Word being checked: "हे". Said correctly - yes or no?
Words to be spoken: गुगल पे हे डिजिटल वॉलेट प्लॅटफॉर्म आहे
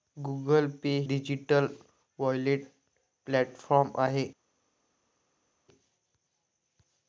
no